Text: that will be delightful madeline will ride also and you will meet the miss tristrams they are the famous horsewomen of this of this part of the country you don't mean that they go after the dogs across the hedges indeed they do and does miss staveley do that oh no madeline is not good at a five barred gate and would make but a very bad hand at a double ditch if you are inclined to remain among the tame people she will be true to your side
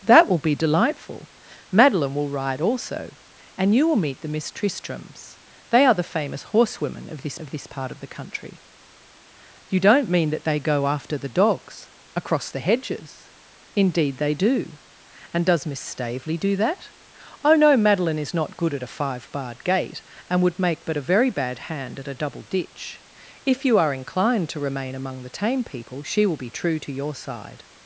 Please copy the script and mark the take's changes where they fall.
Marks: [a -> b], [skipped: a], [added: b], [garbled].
that will be delightful madeline will ride also and you will meet the miss tristrams they are the famous horsewomen of this of this part of the country you don't mean that they go after the dogs across the hedges indeed they do and does miss staveley do that oh no madeline is not good at a five barred gate and would make but a very bad hand at a double ditch if you are inclined to remain among the tame people she will be true to your side